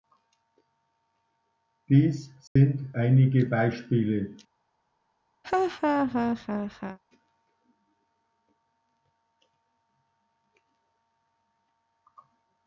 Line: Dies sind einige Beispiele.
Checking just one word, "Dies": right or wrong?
right